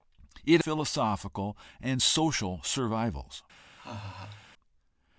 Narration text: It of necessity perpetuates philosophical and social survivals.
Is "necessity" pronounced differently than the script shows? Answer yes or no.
yes